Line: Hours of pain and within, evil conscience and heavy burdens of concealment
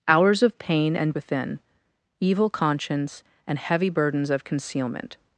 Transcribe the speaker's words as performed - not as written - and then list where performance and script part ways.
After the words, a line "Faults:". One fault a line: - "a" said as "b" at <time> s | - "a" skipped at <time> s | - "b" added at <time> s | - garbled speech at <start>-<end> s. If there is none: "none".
Hours of pain and within, evil conscience and heavy burdens of concealment
Faults:
none